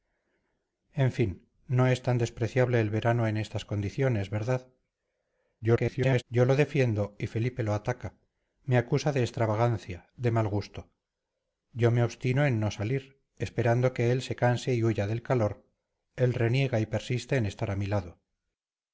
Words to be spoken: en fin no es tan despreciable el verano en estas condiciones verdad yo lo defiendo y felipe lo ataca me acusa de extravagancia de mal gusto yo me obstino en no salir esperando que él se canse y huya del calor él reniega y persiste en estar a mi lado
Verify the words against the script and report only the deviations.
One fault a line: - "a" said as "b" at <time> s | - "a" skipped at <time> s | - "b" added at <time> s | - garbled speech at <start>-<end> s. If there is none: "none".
- garbled speech at 5.6-6.2 s